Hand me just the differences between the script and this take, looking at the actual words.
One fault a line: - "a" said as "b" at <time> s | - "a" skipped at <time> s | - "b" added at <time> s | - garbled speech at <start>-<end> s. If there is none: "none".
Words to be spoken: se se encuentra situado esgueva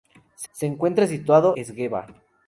none